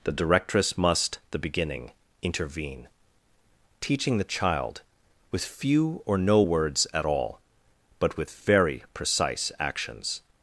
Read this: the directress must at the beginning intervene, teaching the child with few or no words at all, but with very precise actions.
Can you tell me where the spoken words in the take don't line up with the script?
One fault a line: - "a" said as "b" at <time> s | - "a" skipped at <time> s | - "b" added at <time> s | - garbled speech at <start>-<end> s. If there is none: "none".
- "at" skipped at 1.2 s